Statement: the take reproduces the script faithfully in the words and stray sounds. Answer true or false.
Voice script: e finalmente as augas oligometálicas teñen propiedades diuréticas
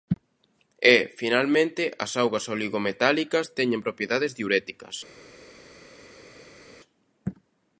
true